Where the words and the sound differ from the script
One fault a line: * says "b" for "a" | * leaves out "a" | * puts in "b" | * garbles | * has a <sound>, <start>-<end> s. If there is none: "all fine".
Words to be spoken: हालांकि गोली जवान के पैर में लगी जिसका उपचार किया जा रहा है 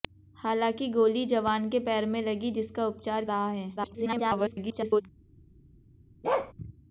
* leaves out "किया जा"
* garbles
* has a bark, 6.2-6.5 s